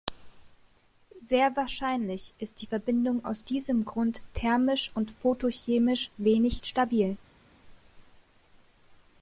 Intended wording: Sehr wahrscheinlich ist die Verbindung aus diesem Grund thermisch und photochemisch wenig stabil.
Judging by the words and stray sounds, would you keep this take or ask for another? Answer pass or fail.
pass